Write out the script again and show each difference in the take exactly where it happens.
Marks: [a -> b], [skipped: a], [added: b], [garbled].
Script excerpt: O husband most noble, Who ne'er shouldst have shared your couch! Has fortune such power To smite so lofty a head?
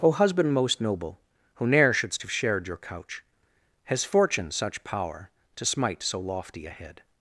O husband most noble, Who ne'er shouldst have shared your couch! Has fortune such power To smite so lofty a head?